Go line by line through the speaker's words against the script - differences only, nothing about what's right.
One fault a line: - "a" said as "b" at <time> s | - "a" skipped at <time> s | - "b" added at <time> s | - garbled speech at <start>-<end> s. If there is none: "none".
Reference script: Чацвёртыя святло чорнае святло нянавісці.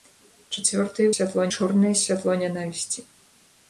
none